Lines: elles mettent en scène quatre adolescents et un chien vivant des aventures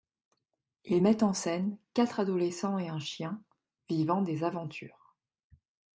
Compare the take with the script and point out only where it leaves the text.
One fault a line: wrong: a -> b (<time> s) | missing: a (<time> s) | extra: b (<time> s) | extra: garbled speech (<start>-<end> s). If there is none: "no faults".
wrong: elles -> ils (0.8 s)